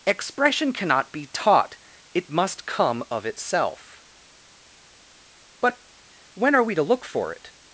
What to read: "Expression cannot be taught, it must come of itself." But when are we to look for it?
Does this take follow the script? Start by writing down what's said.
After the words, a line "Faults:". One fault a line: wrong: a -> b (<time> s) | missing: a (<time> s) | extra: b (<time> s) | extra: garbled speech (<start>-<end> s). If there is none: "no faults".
"Expression cannot be taught, it must come of itself." But when are we to look for it?
Faults:
no faults